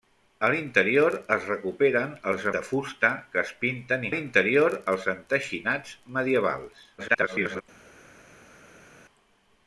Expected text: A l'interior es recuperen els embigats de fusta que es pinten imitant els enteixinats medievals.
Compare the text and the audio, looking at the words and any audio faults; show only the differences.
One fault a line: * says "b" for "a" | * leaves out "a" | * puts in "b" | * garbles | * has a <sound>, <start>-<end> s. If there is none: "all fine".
* leaves out "embigats"
* says "l'interior" for "imitant"
* garbles